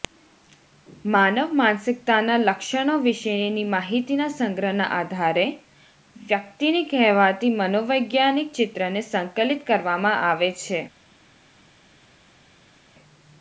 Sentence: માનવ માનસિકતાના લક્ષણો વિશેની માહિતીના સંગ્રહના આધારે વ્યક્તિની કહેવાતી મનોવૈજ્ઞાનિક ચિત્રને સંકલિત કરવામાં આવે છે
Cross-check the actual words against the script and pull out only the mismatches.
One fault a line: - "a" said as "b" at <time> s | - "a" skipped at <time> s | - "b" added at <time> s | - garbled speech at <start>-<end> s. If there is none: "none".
none